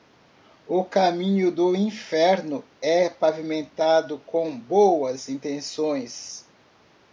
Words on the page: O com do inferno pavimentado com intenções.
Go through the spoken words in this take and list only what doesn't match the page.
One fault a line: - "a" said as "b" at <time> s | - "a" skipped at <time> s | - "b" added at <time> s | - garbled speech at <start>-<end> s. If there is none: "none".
- "com" said as "caminho" at 0.8 s
- "é" added at 2.8 s
- "boas" added at 4.6 s